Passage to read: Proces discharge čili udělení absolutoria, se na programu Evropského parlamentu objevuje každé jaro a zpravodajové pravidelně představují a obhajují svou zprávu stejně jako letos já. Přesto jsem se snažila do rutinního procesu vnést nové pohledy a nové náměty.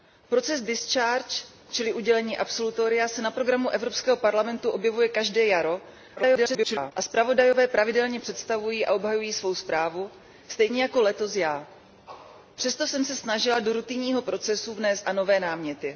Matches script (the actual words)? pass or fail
fail